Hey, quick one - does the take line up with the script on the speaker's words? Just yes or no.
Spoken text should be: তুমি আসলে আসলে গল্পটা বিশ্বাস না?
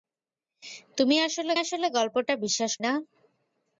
yes